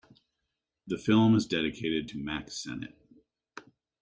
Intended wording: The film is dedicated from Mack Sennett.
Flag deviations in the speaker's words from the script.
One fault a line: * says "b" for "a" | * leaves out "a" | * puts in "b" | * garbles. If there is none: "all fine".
* says "to" for "from"